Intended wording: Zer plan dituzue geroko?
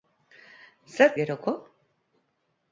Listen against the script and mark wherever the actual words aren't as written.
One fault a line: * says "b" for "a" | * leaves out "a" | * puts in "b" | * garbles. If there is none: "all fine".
* leaves out "plan dituzue"